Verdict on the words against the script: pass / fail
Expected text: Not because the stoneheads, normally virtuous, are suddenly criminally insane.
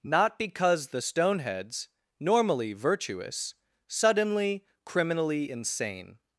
fail